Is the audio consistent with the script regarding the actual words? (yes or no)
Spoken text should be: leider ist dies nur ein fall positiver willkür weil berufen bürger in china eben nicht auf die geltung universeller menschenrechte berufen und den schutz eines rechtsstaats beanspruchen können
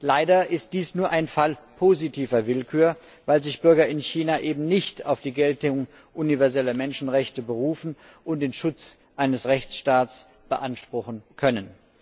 no